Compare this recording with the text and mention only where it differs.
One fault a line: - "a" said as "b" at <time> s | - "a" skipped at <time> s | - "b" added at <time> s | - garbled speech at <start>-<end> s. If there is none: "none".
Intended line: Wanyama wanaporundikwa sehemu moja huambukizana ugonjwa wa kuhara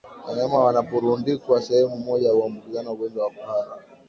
none